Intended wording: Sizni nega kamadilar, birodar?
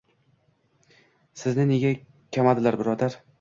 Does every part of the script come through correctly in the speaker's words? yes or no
yes